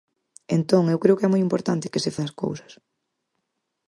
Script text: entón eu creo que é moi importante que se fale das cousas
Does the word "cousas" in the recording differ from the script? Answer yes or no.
no